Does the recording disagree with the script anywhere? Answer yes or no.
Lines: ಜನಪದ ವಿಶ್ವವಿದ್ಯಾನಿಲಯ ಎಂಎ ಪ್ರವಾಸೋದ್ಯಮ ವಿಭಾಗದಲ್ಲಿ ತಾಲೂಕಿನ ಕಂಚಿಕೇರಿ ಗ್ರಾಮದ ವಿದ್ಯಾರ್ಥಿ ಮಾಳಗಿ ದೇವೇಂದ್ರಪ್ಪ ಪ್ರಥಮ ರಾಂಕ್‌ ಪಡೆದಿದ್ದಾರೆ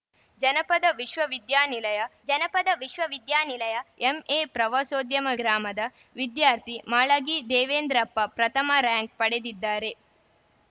yes